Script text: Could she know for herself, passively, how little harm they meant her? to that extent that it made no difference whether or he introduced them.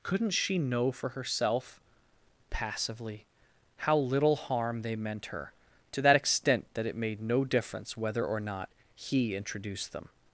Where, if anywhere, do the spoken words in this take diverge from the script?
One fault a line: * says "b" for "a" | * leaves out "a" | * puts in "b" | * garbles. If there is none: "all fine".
* says "Couldn't" for "Could"
* puts in "not"